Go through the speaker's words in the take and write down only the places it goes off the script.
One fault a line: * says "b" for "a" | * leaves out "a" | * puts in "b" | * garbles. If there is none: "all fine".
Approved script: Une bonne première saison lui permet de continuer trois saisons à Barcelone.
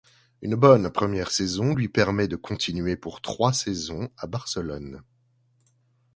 * puts in "pour"